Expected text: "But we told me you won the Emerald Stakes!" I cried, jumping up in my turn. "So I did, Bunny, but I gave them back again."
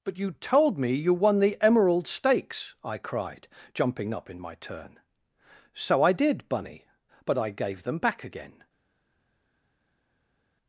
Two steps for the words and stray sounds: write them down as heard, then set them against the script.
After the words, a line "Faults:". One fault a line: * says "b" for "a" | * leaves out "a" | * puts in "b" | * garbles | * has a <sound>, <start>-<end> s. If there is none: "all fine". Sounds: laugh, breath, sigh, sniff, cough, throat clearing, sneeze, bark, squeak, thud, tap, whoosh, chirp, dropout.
"But you told me you won the Emerald Stakes!" I cried, jumping up in my turn. "So I did, Bunny, but I gave them back again."
Faults:
* says "you" for "we"